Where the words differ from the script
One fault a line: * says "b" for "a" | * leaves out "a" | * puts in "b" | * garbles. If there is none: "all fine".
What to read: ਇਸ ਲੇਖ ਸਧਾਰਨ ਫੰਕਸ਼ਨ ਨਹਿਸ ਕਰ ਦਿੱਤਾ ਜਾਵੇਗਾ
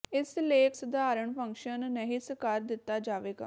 all fine